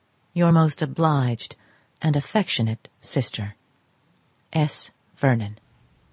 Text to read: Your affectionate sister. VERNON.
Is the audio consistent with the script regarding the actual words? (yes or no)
no